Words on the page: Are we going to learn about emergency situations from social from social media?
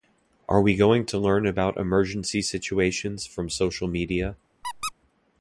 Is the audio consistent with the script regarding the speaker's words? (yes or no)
no